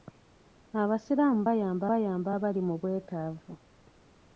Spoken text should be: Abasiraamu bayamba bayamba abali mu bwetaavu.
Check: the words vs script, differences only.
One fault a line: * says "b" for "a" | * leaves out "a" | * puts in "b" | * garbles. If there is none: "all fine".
all fine